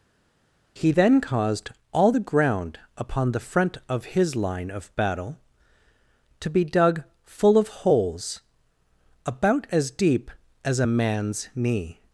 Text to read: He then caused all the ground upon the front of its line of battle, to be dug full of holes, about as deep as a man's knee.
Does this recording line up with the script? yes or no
no